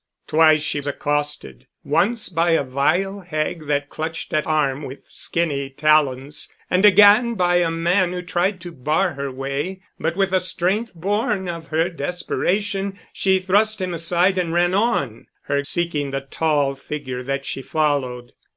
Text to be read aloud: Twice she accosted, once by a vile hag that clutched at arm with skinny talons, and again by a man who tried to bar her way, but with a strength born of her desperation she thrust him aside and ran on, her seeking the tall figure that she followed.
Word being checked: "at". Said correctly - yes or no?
yes